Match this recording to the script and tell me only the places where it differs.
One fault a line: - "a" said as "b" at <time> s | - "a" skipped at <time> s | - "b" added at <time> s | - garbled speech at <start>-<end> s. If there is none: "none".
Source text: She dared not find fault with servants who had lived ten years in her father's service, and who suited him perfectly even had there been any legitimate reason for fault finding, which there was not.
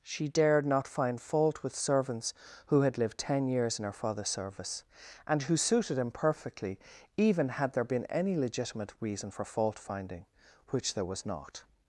none